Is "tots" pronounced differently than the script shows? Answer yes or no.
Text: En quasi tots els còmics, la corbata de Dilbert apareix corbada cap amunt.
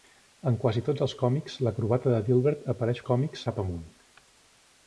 no